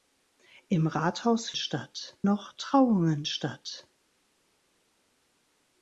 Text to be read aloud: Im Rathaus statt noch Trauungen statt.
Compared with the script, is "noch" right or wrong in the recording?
right